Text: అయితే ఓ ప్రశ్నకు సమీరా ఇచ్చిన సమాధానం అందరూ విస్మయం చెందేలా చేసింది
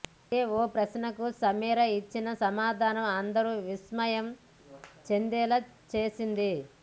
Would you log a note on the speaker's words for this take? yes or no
no